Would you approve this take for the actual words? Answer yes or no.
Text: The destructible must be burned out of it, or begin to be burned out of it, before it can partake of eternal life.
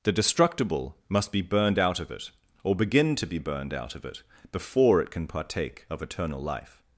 yes